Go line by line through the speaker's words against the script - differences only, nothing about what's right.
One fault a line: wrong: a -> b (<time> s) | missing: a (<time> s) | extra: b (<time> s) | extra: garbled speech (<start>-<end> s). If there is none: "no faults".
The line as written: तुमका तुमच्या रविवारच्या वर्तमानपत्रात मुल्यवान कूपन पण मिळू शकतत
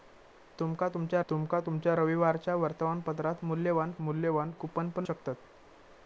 extra: तुमका तुमच्या (1.3 s)
extra: मुल्यवान (4.0 s)
missing: मिळू (5.0 s)